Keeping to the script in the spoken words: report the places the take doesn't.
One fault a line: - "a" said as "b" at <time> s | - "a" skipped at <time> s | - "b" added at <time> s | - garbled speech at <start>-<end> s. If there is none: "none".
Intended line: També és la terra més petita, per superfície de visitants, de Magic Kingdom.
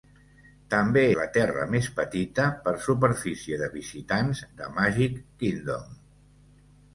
- "és" skipped at 1.0 s